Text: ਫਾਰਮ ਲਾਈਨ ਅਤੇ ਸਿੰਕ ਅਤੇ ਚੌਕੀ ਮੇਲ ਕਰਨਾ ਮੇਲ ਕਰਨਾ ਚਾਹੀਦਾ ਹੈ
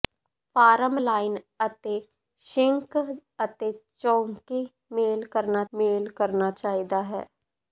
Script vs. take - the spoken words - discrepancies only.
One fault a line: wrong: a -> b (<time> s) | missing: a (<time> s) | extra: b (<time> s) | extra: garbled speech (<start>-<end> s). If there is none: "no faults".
no faults